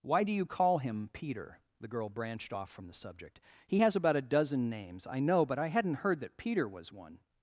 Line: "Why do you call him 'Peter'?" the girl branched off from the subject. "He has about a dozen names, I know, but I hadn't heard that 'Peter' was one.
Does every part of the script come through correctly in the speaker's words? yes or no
yes